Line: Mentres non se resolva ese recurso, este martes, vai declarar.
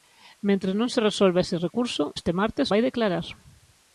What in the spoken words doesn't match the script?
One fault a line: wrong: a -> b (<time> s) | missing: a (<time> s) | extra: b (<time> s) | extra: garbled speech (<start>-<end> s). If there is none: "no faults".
no faults